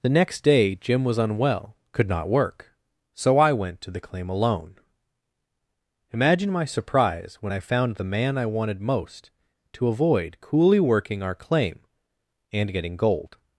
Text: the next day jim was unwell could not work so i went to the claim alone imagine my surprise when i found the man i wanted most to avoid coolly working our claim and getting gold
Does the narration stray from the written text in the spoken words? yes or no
no